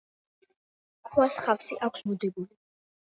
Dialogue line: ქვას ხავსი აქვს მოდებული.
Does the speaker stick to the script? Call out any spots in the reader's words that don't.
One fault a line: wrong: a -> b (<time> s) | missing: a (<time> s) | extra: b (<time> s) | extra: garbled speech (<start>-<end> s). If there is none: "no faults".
no faults